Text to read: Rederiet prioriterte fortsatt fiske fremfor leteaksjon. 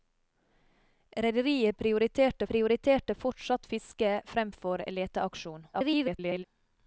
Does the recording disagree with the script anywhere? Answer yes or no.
yes